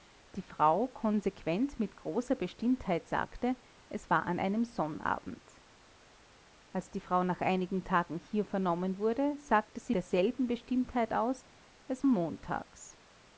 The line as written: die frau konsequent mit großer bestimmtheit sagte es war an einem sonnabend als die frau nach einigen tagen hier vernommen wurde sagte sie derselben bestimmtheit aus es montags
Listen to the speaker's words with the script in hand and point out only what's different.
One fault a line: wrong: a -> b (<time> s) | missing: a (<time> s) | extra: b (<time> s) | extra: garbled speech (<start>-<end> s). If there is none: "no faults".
no faults